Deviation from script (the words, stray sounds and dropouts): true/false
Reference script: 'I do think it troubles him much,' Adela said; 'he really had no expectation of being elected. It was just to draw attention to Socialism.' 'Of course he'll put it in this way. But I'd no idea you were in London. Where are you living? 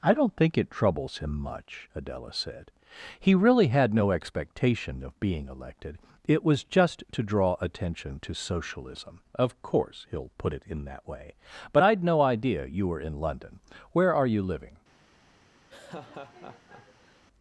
true